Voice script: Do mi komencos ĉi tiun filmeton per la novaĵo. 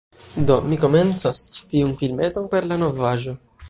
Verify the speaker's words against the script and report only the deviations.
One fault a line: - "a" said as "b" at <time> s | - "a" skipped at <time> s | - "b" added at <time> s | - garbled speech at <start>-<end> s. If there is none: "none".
none